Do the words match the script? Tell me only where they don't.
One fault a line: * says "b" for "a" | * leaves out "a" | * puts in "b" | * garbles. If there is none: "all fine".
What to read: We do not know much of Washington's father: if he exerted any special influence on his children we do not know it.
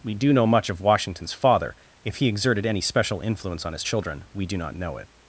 * leaves out "not"